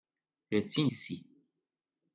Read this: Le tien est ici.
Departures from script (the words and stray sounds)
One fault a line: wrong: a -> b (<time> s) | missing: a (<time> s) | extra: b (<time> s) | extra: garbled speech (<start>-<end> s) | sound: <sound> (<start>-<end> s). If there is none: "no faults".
missing: est (0.9 s)